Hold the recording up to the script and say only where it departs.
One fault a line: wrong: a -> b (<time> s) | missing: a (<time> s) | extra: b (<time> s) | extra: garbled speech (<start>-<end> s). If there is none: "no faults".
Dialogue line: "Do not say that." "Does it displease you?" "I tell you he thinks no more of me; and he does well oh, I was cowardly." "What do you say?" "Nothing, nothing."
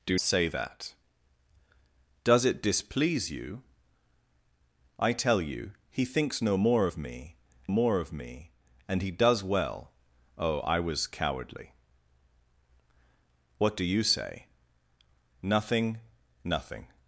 missing: not (0.2 s)
extra: more of me (7.7 s)